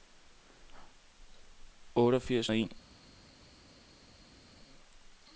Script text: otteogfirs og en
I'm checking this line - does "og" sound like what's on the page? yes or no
yes